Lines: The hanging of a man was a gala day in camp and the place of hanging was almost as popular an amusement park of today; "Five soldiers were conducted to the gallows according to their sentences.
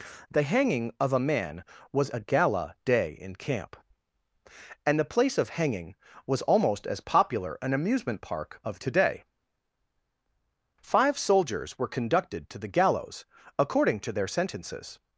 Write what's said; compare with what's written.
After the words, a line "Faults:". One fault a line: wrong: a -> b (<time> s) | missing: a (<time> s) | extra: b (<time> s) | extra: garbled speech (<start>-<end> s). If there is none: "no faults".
The hanging of a man was a gala day in camp and the place of hanging was almost as popular an amusement park of today; "Five soldiers were conducted to the gallows according to their sentences.
Faults:
no faults